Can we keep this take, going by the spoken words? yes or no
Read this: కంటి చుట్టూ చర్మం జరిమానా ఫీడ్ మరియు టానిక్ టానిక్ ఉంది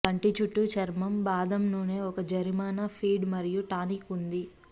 no